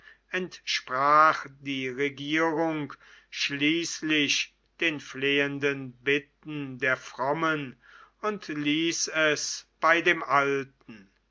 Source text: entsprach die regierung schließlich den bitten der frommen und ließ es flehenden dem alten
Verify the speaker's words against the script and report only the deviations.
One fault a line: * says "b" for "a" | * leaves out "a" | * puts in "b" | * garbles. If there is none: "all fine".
* puts in "flehenden"
* says "bei" for "flehenden"